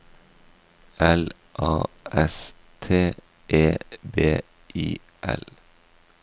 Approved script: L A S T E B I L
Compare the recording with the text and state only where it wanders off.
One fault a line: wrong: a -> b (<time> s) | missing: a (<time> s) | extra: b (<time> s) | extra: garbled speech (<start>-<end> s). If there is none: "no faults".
no faults